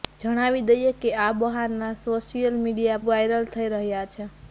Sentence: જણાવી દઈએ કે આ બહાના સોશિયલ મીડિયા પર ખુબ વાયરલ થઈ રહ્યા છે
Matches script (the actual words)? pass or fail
fail